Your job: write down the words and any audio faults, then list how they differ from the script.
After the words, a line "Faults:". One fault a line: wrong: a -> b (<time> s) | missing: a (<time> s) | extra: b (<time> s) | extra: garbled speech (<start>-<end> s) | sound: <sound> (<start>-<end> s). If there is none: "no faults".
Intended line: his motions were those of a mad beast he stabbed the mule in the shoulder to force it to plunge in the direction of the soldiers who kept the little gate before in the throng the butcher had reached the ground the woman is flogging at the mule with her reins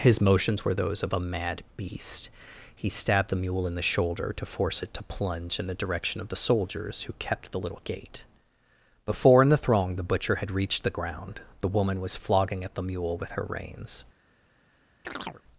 his motions were those of a mad beast he stabbed the mule in the shoulder to force it to plunge in the direction of the soldiers who kept the little gate before in the throng the butcher had reached the ground the woman was flogging at the mule with her reins
Faults:
wrong: is -> was (12.0 s)
sound: chirp (15.0-15.4 s)